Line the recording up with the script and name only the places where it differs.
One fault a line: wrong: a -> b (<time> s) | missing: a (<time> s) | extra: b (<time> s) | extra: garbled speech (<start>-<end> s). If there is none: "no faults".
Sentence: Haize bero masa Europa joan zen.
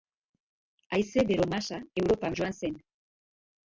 no faults